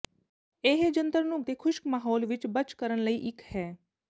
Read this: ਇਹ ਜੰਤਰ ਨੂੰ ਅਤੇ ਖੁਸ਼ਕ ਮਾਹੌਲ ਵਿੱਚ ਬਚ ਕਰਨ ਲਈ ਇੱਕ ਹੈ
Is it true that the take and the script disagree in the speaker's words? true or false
false